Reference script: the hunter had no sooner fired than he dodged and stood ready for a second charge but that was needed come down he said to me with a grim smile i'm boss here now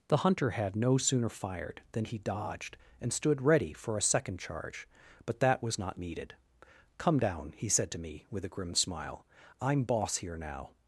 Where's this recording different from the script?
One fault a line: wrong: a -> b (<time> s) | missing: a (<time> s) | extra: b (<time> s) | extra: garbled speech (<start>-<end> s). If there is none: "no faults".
extra: not (5.8 s)